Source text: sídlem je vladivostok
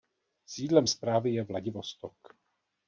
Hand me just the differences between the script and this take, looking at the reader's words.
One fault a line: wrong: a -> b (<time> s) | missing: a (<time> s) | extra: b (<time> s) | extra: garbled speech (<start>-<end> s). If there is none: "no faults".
extra: správy (0.9 s)